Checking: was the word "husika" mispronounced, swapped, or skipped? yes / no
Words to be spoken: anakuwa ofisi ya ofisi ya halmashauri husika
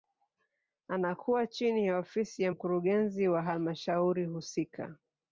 no